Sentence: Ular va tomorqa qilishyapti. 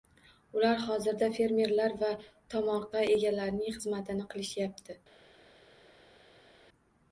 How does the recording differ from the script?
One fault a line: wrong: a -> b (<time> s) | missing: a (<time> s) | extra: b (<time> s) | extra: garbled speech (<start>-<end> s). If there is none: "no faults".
extra: hozirda fermerlar (0.8 s)
extra: egalarining xizmatini (3.2 s)